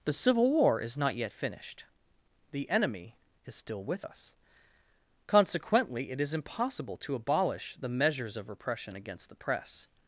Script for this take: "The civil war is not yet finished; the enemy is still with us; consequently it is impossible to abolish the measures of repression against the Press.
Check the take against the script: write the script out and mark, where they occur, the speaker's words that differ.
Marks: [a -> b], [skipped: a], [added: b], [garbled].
"The civil war is not yet finished; the enemy is still with us; consequently it is impossible to abolish the measures of repression against the Press.